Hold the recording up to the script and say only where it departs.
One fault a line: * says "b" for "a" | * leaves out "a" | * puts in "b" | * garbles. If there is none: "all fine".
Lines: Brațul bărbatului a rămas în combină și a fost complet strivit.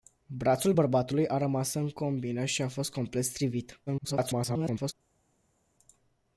* garbles